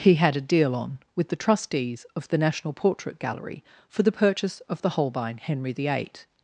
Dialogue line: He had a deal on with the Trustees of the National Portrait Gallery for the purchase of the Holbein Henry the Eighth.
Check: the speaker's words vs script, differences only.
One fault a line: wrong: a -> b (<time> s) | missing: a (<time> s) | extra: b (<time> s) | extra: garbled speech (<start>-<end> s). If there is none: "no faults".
no faults